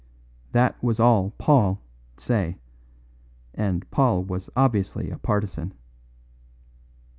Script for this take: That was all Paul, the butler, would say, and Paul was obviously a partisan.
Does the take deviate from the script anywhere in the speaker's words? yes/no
yes